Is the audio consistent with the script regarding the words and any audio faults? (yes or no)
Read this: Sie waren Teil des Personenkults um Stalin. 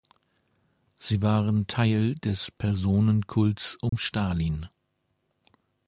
no